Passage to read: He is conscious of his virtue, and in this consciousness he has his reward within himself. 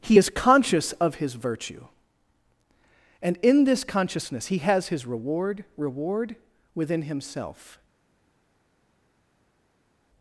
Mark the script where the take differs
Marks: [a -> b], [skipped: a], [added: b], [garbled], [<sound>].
He is conscious of his virtue, and in this consciousness he has his reward [added: reward] within himself.